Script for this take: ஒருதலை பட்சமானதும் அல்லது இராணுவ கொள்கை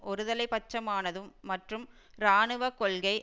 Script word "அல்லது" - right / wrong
wrong